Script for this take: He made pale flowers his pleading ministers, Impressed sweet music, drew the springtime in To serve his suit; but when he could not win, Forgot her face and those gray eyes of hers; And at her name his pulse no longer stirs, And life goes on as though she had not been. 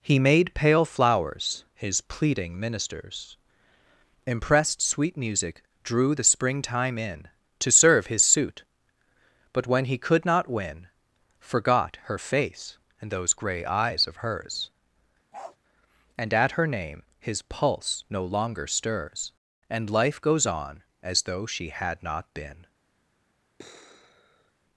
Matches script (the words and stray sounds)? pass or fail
fail